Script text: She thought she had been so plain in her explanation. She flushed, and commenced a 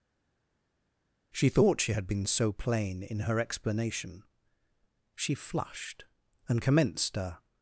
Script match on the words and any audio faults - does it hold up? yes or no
yes